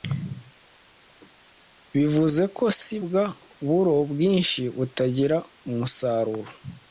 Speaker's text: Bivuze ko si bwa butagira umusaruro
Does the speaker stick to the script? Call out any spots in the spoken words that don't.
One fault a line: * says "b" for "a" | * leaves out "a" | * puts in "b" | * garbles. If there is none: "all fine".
* puts in "buro bwinshi"